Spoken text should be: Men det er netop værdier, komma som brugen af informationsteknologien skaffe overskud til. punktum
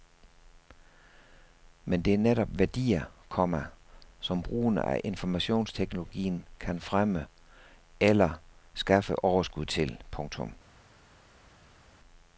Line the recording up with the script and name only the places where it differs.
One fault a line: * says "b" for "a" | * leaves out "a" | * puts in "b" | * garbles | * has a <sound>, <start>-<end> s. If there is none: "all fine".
* puts in "kan fremme eller"